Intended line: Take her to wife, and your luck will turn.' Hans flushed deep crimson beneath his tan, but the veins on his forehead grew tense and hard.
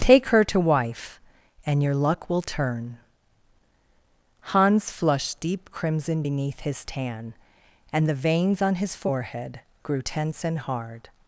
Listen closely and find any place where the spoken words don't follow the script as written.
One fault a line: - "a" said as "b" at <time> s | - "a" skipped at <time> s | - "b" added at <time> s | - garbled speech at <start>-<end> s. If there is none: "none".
- "but" said as "and" at 7.9 s